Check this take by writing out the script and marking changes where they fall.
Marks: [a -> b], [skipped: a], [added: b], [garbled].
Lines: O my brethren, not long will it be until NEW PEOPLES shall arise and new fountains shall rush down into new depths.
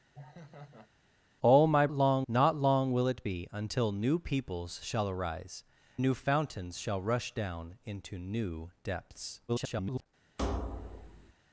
O my [brethren, -> long] not long will it be until NEW PEOPLES shall arise [skipped: and] new fountains shall rush down into new depths. [garbled]